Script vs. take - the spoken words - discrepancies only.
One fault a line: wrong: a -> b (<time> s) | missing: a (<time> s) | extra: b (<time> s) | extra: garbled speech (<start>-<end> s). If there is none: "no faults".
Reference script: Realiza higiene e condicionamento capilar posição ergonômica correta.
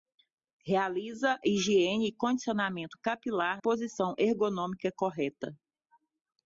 no faults